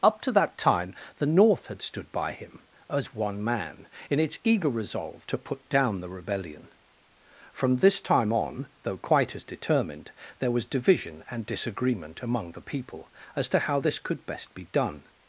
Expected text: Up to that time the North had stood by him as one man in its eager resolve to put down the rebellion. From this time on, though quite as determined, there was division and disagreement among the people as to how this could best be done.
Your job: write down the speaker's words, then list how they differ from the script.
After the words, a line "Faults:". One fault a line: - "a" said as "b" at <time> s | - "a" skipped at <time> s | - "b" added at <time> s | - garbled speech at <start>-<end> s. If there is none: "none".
Up to that time the North had stood by him as one man in its eager resolve to put down the rebellion. From this time on, though quite as determined, there was division and disagreement among the people as to how this could best be done.
Faults:
none